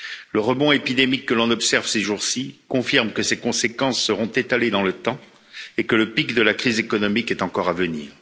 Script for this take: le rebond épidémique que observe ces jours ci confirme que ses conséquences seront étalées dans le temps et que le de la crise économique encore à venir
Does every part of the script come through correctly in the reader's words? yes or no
no